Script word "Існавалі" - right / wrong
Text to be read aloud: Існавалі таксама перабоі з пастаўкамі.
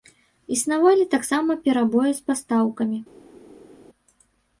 right